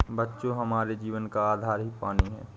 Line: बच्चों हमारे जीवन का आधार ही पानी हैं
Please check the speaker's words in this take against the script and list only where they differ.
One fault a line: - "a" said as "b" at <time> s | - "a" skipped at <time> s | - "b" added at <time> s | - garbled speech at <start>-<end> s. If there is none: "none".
none